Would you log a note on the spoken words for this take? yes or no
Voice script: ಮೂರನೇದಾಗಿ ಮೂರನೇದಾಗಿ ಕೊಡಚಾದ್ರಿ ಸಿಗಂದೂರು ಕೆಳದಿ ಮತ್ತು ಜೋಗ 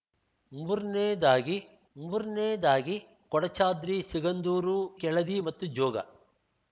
no